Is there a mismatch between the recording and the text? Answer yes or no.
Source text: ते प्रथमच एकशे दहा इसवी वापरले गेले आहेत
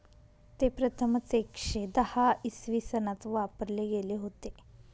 yes